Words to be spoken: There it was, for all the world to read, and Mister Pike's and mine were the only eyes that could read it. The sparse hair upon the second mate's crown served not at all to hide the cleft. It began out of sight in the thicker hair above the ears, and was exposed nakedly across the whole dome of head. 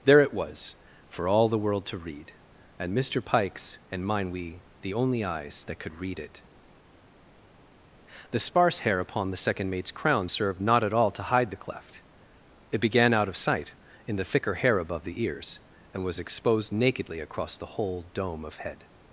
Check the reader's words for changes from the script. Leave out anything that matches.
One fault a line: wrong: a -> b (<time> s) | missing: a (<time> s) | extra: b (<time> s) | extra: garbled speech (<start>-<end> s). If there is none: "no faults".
wrong: were -> we (4.3 s)